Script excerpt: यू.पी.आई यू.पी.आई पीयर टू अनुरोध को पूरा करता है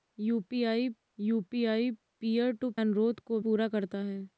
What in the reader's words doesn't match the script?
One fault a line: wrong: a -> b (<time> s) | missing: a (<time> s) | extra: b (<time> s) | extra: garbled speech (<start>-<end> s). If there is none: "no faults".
no faults